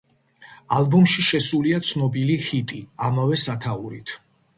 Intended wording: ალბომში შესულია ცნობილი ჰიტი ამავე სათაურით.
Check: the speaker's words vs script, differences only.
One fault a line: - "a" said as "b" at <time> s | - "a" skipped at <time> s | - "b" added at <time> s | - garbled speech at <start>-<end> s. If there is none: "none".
none